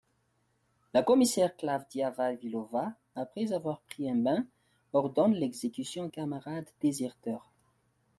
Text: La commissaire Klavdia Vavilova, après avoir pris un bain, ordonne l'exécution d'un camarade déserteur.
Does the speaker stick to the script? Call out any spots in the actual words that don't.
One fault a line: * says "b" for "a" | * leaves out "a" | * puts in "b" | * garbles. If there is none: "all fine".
* leaves out "d'un"